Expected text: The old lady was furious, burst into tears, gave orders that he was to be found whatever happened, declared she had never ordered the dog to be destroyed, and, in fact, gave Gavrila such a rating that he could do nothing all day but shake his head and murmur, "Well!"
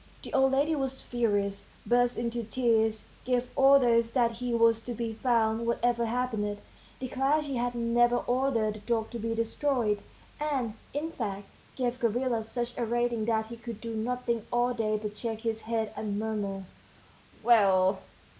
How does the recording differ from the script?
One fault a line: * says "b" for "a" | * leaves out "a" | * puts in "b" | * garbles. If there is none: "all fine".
all fine